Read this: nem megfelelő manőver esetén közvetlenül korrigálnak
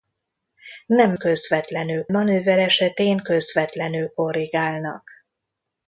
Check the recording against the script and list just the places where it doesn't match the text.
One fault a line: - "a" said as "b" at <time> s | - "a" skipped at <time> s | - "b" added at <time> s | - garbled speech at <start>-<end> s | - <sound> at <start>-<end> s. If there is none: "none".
- "megfelelő" said as "közvetlenül" at 1.1 s